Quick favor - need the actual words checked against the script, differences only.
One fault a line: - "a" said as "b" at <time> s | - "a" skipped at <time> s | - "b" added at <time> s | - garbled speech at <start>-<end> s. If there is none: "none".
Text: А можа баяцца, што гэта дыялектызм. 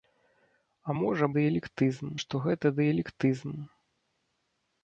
- "баяцца" said as "дыялектызм" at 1.4 s